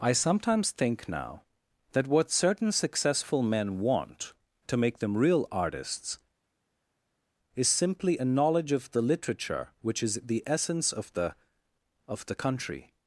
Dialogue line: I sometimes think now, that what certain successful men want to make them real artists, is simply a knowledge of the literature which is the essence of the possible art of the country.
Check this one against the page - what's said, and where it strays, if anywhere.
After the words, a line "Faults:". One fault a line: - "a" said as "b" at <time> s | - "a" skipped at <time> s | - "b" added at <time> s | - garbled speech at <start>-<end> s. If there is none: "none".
I sometimes think now, that what certain successful men want to make them real artists, is simply a knowledge of the literature which is the essence of the of the country.
Faults:
- "possible art" skipped at 11.4 s